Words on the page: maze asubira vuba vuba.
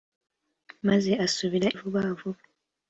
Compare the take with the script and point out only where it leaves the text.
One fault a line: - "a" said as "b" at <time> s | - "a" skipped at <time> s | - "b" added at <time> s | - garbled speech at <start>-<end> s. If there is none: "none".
none